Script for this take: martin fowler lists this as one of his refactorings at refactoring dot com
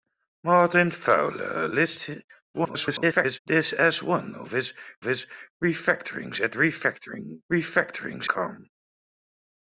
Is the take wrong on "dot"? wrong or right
wrong